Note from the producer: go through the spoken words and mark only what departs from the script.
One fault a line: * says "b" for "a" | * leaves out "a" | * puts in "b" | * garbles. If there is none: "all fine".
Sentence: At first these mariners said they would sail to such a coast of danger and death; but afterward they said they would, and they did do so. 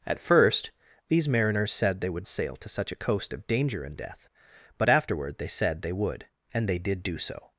all fine